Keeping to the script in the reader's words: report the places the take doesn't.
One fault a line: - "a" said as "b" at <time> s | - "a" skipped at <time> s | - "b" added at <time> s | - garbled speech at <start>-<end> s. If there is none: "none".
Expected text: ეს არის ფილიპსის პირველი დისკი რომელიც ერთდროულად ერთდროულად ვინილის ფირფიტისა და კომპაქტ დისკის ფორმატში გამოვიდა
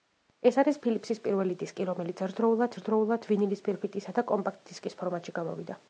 none